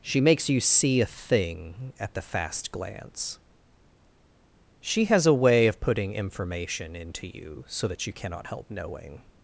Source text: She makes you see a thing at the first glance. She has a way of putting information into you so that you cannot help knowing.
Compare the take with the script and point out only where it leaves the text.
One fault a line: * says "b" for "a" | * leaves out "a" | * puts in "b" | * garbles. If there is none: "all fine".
* says "fast" for "first"